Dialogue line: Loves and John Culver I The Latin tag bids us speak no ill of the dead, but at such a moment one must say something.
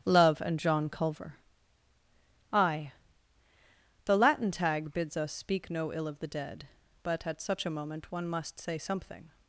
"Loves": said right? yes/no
no